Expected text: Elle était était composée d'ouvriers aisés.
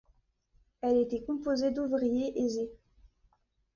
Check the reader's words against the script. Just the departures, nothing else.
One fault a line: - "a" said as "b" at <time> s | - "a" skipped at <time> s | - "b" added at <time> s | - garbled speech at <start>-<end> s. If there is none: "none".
- "était" skipped at 1.2 s